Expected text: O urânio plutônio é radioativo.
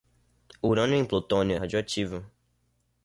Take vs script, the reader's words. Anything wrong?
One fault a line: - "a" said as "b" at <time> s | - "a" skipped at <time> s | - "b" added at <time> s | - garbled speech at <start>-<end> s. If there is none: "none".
- "em" added at 0.9 s